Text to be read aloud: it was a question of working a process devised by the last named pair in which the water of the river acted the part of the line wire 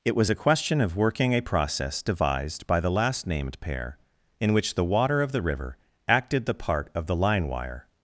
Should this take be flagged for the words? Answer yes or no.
no